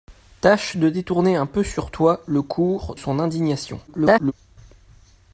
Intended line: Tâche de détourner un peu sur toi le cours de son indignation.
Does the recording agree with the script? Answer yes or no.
no